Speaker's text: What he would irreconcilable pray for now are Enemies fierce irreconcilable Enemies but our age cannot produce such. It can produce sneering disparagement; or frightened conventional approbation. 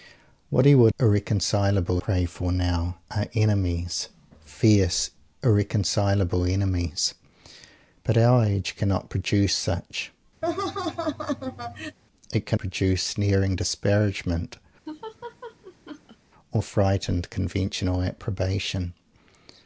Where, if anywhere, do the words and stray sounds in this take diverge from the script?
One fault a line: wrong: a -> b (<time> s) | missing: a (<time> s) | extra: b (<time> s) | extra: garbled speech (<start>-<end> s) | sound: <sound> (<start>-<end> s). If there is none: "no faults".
sound: laugh (10.4-12.0 s)
sound: laugh (14.9-16.2 s)